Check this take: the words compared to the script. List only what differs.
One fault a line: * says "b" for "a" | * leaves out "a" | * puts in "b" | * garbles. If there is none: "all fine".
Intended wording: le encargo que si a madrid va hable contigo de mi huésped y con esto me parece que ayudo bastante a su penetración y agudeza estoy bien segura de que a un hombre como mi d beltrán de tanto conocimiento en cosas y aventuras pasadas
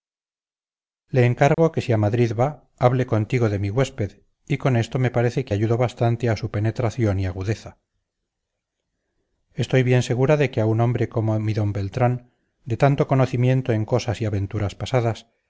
all fine